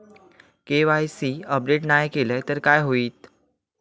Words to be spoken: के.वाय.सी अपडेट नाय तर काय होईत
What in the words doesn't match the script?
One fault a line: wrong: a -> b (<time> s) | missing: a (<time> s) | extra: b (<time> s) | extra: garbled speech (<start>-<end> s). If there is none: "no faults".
extra: केलय (2.1 s)